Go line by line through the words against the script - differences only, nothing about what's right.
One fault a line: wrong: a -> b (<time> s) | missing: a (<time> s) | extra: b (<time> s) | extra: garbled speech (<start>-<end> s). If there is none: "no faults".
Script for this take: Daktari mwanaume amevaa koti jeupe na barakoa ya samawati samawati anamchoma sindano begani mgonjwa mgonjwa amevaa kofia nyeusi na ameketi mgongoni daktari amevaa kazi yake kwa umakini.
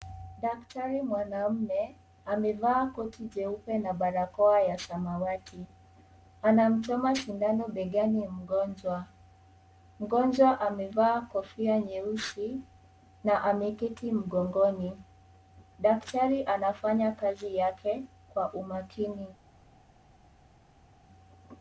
missing: samawati (5.7 s)
wrong: amevaa -> anafanya (16.4 s)